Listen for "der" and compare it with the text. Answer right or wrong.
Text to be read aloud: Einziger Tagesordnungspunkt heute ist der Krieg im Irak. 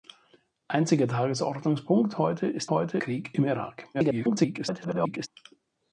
wrong